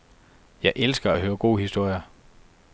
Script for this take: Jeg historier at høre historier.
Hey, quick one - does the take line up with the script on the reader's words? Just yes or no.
no